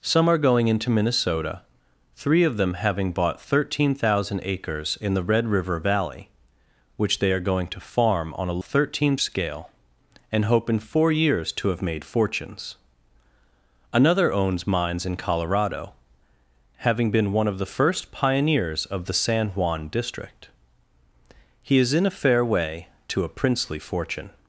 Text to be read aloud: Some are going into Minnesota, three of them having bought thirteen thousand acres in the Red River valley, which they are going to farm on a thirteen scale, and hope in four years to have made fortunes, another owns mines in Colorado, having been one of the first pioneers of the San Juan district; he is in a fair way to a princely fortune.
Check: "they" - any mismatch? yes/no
no